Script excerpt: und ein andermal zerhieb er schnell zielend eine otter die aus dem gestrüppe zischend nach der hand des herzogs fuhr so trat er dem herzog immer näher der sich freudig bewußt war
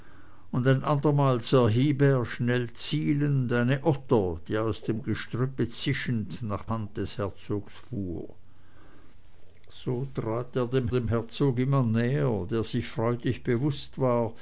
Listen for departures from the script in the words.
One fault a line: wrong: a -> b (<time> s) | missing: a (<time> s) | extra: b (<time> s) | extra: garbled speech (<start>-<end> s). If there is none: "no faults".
missing: der (6.7 s)
extra: dem (10.9 s)